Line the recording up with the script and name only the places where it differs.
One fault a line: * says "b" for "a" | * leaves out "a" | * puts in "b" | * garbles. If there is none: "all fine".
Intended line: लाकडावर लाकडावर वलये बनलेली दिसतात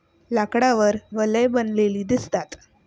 * leaves out "लाकडावर"